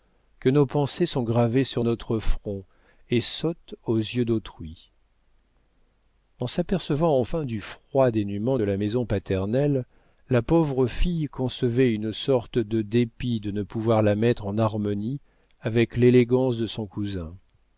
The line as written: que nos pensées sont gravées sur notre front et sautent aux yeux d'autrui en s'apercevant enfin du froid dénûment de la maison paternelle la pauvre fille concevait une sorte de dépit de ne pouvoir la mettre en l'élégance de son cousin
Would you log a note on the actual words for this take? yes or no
yes